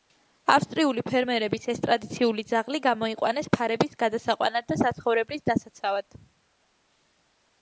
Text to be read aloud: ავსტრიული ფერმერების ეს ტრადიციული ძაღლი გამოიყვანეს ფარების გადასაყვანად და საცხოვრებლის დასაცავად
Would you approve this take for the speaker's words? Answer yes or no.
yes